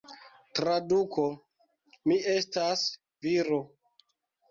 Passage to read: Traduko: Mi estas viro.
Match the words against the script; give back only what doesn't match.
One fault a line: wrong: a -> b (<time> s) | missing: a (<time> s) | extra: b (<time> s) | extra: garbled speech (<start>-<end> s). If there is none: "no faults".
no faults